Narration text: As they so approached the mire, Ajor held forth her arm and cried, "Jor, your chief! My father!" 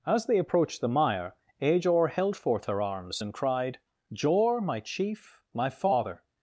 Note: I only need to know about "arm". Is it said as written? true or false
false